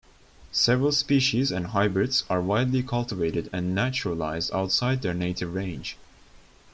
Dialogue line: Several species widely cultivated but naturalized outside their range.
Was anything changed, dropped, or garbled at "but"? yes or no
yes